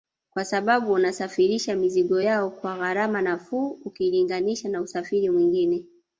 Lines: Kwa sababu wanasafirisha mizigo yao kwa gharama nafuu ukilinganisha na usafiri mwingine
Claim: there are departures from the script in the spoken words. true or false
false